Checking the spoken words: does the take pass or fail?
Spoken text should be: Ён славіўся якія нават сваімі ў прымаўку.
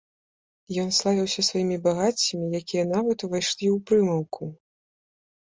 fail